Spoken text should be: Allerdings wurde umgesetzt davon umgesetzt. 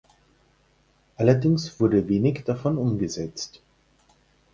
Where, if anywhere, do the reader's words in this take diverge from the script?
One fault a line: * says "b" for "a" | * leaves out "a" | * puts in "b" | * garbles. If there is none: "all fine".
* says "wenig" for "umgesetzt"